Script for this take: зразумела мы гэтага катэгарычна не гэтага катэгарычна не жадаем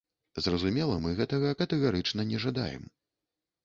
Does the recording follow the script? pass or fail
fail